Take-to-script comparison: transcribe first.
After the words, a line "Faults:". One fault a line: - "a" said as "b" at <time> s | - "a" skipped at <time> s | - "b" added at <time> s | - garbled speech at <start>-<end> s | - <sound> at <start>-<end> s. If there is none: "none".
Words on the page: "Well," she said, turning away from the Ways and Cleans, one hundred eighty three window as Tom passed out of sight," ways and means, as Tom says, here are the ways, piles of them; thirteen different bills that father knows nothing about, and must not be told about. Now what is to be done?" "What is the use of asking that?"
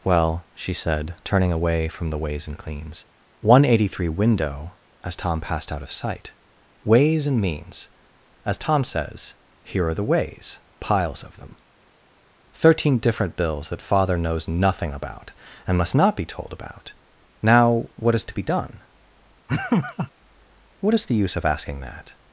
"Well," she said, turning away from the Ways and Cleans, one hundred eighty three window as Tom passed out of sight," ways and means, as Tom says, here are the ways, piles of them; thirteen different bills that father knows nothing about, and must not be told about. Now what is to be done?" "What is the use of asking that?"
Faults:
- laugh at 19.5-20.1 s